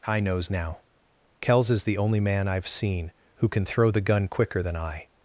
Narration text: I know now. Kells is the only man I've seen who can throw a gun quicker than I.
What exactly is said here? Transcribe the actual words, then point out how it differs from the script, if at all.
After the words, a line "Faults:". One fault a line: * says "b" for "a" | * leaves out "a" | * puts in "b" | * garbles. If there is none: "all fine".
I knows now. Kells is the only man I've seen who can throw the gun quicker than I.
Faults:
* says "knows" for "know"
* says "the" for "a"